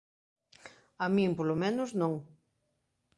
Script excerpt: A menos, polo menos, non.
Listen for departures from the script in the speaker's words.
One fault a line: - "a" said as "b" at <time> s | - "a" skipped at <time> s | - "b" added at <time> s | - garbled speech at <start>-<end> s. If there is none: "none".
- "menos" said as "min" at 1.1 s